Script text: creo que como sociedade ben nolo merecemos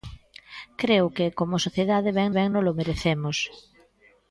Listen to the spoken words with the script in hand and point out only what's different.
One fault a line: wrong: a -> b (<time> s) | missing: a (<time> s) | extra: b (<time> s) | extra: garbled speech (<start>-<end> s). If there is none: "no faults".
extra: ben (2.4 s)